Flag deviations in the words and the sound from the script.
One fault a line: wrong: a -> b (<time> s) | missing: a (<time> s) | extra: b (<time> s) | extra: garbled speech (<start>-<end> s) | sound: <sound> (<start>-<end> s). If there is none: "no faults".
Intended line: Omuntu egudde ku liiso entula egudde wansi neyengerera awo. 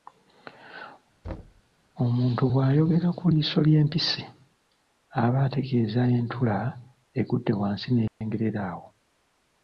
sound: thud (1.2-1.6 s)
wrong: egudde -> bw'ayogera (2.5 s)
extra: ly'empisi aba ategeeza (3.7 s)
sound: dropout (8.1-8.2 s)